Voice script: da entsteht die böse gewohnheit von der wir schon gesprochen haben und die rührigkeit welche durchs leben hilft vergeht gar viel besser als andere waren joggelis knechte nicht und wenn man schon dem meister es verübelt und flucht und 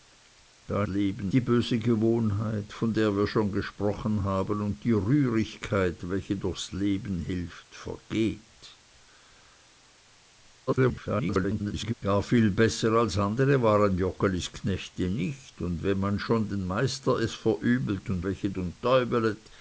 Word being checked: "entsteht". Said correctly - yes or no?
no